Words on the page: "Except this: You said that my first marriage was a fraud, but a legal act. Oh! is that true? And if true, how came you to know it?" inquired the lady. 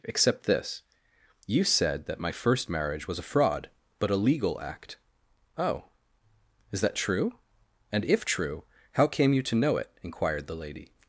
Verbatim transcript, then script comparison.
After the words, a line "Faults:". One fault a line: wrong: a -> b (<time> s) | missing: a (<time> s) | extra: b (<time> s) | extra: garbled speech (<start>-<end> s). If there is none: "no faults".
"Except this: You said that my first marriage was a fraud, but a legal act. Oh! is that true? And if true, how came you to know it?" inquired the lady.
Faults:
no faults